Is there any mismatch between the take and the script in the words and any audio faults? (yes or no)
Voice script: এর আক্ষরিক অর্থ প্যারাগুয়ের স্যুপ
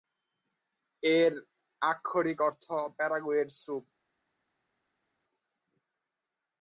no